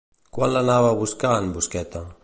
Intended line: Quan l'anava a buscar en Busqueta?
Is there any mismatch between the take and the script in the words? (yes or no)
no